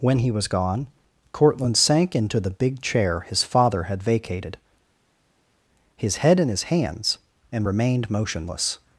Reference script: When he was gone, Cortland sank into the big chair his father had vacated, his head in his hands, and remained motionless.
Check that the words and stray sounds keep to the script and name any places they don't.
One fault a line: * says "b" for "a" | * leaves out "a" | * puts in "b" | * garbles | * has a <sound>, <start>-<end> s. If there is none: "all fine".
all fine